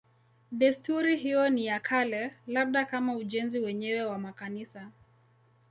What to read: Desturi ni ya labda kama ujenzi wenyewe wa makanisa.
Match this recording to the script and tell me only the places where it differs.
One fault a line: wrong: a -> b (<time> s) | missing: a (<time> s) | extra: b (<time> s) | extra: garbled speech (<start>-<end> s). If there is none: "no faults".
extra: hiyo (1.2 s)
extra: kale (1.8 s)